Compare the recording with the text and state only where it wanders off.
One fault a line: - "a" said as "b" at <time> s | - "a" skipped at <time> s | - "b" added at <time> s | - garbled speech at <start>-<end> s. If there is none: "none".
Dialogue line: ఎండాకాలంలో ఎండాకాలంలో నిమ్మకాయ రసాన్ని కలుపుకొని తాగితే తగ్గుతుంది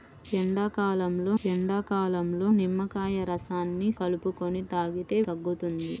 none